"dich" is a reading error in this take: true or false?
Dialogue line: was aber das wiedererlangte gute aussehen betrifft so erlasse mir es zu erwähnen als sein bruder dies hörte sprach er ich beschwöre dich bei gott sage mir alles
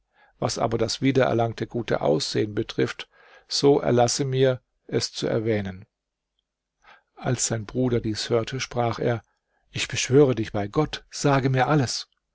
false